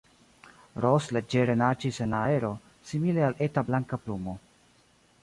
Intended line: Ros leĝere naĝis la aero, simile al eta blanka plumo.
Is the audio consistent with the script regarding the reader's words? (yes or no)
no